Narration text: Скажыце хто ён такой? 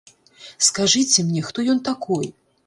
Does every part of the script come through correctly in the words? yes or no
no